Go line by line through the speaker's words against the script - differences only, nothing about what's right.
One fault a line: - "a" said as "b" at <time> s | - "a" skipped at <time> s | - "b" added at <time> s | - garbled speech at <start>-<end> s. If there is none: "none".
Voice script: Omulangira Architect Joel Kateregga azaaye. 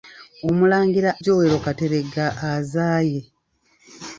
- "Architect" skipped at 1.1 s